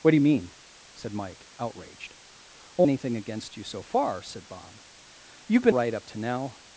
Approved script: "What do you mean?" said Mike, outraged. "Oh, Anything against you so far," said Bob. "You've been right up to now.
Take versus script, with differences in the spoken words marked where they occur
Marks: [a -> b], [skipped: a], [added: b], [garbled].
"What do you mean?" said Mike, outraged. "Oh, Anything against you so far," said Bob. "You've been right up to now.